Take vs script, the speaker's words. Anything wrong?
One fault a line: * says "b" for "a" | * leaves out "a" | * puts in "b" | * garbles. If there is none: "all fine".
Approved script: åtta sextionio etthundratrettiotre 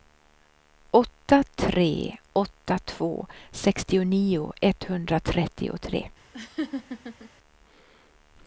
* puts in "tre åtta två"